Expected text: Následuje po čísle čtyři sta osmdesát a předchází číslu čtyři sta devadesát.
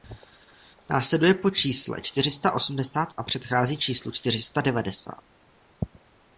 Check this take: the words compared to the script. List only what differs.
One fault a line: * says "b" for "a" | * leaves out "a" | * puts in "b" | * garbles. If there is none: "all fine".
all fine